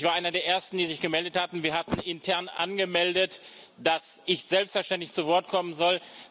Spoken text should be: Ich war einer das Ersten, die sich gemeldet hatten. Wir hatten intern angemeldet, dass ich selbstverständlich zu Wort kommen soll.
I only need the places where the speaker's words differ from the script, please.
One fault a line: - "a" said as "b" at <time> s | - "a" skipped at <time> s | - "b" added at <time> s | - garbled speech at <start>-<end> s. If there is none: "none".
- "das" said as "der" at 0.3 s